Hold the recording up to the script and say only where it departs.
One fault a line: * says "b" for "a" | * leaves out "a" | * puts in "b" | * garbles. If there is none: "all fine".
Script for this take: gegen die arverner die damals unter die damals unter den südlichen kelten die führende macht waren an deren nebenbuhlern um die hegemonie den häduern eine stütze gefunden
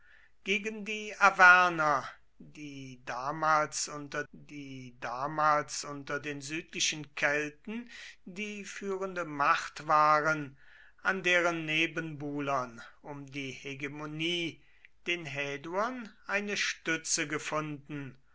all fine